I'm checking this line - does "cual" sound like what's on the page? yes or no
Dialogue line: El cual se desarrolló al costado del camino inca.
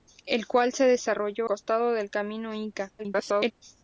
yes